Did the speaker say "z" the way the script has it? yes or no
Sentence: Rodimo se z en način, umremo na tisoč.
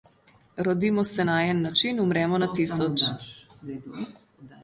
no